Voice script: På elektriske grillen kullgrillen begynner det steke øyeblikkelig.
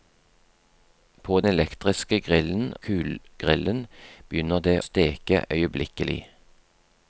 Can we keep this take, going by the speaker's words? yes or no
yes